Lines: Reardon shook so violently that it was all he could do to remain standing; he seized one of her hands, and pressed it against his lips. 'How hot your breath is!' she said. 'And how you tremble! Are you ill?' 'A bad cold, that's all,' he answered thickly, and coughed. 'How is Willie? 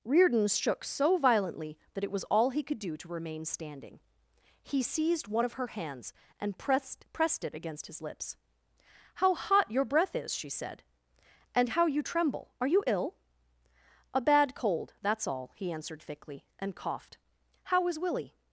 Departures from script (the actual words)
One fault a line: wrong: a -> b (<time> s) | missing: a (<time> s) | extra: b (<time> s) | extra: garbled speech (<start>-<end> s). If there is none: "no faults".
extra: pressed (7.1 s)